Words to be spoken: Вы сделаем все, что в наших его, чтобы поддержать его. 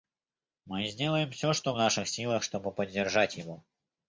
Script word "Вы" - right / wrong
wrong